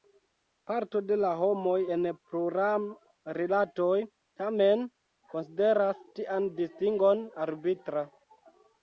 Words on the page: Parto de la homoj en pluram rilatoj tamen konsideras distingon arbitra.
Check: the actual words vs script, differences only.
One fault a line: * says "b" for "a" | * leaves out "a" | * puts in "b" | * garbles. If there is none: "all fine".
* puts in "tian"